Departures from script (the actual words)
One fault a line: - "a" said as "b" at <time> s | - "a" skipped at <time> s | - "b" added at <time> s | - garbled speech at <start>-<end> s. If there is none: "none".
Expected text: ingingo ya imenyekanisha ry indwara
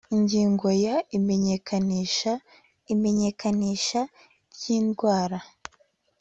- "imenyekanisha" added at 2.9 s